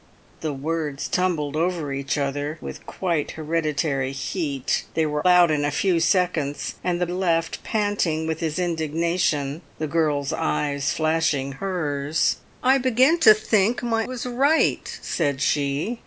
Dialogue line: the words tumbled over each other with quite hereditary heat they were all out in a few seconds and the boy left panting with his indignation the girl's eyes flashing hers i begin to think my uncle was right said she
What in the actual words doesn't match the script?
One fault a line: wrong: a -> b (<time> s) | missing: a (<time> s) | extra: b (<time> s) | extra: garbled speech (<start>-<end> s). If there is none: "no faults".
missing: all (5.2 s)
missing: boy (7.1 s)
missing: uncle (14.1 s)